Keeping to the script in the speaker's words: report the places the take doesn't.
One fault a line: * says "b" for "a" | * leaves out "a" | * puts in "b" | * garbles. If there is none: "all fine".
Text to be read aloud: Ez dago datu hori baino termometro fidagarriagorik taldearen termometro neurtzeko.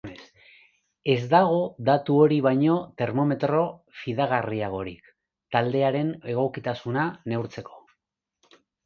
* says "egokitasuna" for "termometro"